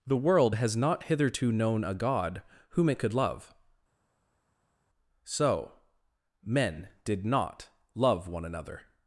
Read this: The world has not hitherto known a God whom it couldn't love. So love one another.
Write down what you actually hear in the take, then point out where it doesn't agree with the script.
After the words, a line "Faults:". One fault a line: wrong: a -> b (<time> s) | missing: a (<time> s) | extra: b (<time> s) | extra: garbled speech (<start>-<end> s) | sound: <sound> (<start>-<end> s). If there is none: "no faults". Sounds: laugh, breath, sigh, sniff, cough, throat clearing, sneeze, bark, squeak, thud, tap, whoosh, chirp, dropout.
The world has not hitherto known a God whom it could love. So men did not love one another.
Faults:
wrong: couldn't -> could (3.0 s)
extra: men did not (6.4 s)